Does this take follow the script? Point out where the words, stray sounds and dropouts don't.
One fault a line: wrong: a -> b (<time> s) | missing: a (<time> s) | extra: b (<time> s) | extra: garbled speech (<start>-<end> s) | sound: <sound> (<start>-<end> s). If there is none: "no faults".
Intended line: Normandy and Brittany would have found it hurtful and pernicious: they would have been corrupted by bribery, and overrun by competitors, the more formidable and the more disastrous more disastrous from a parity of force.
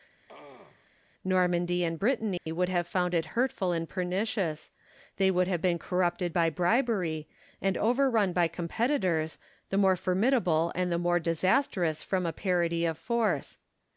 sound: throat clearing (0.3-0.9 s)
sound: dropout (2.4-2.5 s)
missing: more disastrous (12.0 s)